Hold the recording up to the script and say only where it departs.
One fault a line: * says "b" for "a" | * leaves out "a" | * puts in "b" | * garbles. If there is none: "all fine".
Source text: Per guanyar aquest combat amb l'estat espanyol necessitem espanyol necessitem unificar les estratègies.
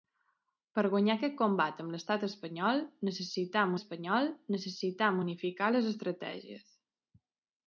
all fine